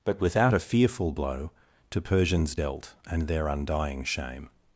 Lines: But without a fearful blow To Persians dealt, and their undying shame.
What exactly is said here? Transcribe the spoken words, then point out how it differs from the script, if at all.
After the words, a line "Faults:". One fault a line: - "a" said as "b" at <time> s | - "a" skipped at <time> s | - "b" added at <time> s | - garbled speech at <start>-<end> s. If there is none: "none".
But without a fearful blow To Persians dealt, and their undying shame.
Faults:
none